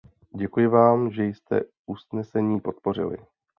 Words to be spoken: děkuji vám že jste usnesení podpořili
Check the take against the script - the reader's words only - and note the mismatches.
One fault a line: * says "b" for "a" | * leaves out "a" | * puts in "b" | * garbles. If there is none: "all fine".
all fine